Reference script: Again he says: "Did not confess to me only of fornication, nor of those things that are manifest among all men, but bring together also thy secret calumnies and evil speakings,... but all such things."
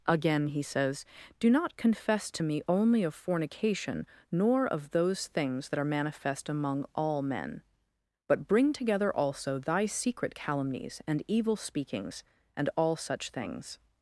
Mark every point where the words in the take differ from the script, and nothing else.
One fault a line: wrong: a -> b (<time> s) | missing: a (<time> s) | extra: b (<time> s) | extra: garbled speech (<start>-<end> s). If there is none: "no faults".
wrong: Did -> Do (1.4 s)
wrong: but -> and (12.6 s)